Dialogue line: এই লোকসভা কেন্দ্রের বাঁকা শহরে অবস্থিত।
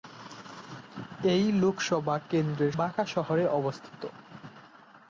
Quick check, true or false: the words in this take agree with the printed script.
true